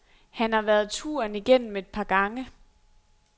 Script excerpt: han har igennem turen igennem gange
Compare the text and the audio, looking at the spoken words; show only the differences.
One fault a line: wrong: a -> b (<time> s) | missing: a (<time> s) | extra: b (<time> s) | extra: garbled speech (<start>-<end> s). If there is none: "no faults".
wrong: igennem -> været (0.6 s)
extra: et par (1.8 s)